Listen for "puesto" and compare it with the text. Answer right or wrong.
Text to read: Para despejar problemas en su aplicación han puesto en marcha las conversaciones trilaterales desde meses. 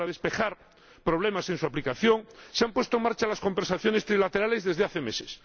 right